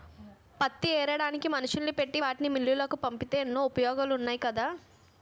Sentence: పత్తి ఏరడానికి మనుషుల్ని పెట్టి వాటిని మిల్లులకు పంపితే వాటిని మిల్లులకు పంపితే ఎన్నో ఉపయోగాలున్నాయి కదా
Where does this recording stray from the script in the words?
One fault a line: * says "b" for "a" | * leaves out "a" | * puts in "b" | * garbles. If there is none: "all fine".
* leaves out "వాటిని మిల్లులకు పంపితే"